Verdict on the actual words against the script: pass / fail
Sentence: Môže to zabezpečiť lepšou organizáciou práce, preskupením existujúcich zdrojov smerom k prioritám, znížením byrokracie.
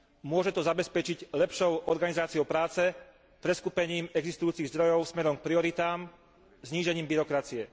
pass